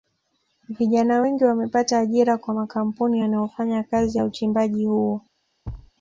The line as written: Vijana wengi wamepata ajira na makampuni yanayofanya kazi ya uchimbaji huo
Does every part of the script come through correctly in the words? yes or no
no